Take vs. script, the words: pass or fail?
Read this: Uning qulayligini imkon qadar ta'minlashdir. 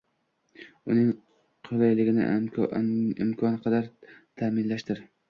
pass